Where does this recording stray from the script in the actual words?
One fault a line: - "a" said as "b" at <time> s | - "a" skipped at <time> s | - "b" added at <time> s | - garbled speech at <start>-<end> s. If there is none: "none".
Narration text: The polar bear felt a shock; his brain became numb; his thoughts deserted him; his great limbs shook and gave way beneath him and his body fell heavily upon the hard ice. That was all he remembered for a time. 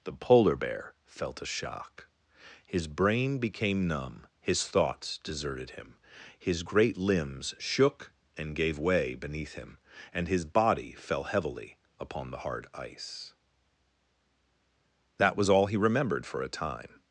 none